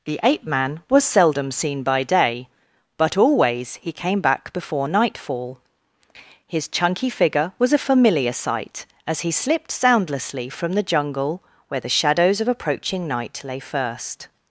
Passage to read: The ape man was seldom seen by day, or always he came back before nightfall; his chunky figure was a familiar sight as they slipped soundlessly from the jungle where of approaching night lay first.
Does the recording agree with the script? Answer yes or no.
no